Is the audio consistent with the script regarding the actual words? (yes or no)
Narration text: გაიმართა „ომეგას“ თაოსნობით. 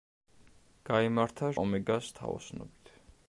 yes